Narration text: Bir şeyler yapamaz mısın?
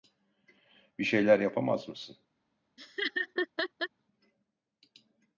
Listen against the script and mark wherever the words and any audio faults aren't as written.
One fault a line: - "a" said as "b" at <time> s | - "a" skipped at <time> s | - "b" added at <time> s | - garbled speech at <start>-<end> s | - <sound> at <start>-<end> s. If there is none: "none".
- laugh at 2.8-3.9 s